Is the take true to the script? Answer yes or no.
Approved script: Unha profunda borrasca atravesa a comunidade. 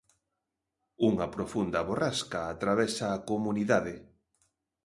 yes